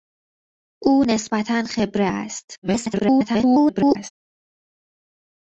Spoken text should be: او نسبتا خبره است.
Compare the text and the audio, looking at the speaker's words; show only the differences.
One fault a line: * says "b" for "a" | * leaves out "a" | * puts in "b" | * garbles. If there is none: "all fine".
* garbles